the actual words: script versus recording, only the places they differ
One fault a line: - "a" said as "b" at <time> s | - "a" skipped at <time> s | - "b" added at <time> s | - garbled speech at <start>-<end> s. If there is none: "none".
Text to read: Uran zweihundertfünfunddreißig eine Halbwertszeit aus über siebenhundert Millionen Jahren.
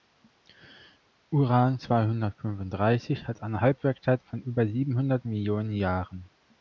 - "hat" added at 3.3 s
- "aus" said as "von" at 4.2 s